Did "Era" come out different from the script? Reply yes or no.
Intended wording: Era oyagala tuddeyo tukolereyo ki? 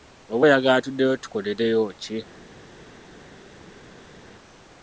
yes